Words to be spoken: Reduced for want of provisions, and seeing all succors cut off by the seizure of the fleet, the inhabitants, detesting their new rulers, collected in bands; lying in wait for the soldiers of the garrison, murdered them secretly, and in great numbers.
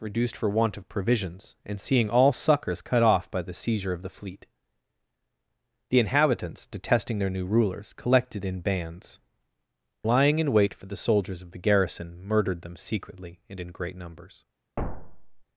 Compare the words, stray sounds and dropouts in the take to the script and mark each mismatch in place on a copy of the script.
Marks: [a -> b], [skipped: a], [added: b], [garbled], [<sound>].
Reduced for want of provisions, and seeing all succors cut off by the seizure of the fleet, the inhabitants, detesting their new rulers, collected in bands; lying in wait for the soldiers of the garrison, murdered them secretly, and in great numbers. [thud]